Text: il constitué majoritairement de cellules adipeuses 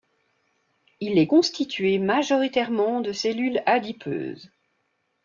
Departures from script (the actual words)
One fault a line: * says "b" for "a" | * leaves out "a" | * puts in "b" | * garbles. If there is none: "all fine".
* puts in "est"